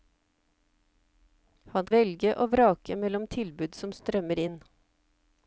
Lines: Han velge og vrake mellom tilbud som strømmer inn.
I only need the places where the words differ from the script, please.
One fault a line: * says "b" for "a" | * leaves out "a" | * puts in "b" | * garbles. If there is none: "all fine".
all fine